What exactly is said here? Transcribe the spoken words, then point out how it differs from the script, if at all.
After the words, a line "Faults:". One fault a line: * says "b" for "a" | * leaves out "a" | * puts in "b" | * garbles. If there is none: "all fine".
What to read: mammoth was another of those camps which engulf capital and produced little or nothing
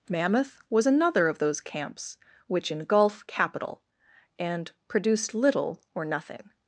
mammoth was another of those camps which engulf capital and produced little or nothing
Faults:
all fine